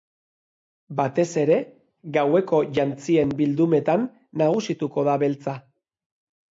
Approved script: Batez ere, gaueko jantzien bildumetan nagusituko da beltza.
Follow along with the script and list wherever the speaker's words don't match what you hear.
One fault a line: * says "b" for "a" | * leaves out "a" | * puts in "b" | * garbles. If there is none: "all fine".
all fine